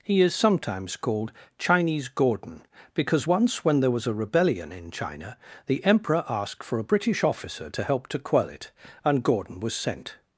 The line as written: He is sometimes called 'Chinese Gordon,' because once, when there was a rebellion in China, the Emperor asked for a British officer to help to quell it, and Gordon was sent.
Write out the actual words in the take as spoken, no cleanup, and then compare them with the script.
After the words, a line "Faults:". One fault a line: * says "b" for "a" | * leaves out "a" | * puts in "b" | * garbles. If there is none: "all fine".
He is sometimes called 'Chinese Gordon,' because once, when there was a rebellion in China, the Emperor asked for a British officer to help to quell it, and Gordon was sent.
Faults:
all fine